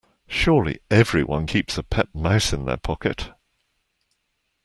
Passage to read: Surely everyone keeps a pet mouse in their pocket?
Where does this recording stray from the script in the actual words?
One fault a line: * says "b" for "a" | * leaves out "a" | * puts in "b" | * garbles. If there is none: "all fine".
all fine